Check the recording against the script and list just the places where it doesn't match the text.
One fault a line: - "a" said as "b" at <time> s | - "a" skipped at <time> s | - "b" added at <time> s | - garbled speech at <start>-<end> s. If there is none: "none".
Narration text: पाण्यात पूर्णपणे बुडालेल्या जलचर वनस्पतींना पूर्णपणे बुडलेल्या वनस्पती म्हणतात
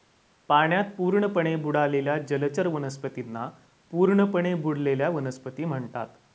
none